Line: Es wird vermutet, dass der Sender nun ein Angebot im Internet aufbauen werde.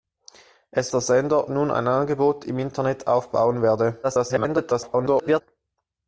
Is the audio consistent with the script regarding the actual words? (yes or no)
no